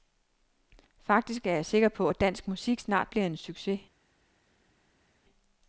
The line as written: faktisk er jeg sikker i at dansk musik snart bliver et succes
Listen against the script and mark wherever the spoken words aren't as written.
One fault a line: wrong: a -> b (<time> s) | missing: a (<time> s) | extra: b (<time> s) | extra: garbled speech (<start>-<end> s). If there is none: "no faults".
wrong: i -> på (1.9 s)
wrong: et -> en (3.3 s)